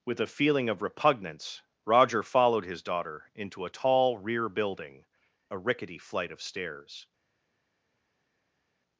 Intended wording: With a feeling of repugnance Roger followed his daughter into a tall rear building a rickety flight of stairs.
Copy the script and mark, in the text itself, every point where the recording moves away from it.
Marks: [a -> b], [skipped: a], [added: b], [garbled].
With a feeling of repugnance Roger followed his daughter into a tall rear building a rickety flight of stairs.